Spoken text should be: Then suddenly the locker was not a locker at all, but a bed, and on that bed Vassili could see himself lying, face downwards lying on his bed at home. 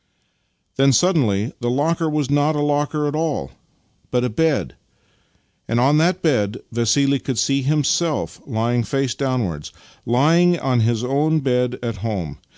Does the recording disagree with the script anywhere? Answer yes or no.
yes